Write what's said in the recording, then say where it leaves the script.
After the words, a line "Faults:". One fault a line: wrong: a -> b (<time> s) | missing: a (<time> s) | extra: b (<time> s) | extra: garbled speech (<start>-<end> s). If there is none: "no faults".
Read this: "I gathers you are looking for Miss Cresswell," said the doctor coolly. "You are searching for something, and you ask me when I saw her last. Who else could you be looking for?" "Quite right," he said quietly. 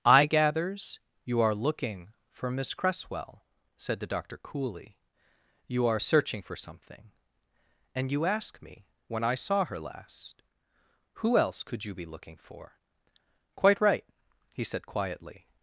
"I gathers you are looking for Miss Cresswell," said the doctor coolly. "You are searching for something, and you ask me when I saw her last. Who else could you be looking for?" "Quite right," he said quietly.
Faults:
no faults